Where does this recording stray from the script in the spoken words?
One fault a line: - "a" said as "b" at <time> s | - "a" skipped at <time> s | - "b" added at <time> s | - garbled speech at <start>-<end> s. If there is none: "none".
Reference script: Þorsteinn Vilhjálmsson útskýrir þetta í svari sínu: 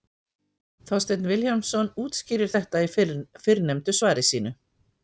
- "fyrrnefndu" added at 3.0 s